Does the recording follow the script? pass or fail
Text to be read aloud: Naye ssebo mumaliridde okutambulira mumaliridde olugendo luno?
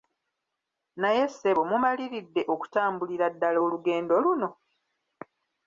fail